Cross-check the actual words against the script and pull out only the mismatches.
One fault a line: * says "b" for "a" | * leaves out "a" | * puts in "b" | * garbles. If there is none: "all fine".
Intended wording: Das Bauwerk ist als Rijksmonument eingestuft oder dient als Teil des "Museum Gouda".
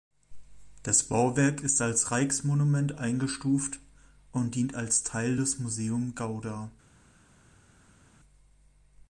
* says "und" for "oder"